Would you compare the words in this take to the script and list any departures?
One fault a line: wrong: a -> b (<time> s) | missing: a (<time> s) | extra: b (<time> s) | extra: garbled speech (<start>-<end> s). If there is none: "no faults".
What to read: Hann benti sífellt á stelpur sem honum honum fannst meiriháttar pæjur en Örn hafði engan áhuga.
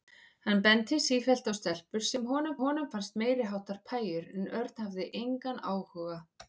no faults